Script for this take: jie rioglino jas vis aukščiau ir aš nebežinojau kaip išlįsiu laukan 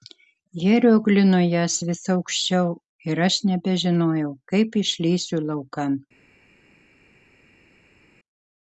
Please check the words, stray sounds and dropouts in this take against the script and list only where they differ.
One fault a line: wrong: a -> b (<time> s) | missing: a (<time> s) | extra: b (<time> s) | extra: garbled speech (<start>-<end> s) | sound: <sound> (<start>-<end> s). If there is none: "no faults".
no faults